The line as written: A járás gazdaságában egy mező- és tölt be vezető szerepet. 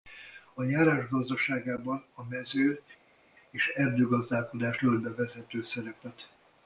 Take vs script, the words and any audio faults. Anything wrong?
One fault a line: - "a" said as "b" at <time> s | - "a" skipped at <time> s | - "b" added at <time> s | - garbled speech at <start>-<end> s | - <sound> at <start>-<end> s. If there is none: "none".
- "egy" said as "a" at 2.1 s
- "erdőgazdálkodás" added at 3.7 s